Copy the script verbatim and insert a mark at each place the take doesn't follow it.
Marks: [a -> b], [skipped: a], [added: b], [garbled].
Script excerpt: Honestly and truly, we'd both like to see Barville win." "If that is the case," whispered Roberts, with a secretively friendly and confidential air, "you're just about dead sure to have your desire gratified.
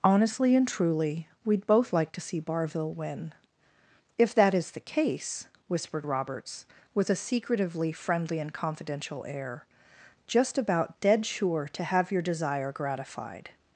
Honestly and truly, we'd both like to see Barville win." "If that is the case," whispered Roberts, with a secretively friendly and confidential air, [skipped: "you're] just about dead sure to have your desire gratified.